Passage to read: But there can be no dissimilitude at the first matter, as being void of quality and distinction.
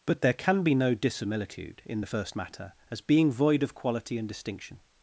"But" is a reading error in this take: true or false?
false